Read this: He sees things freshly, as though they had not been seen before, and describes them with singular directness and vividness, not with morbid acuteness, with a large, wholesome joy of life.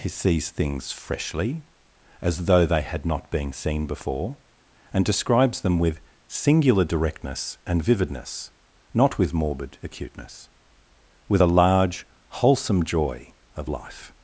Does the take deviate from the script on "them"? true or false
false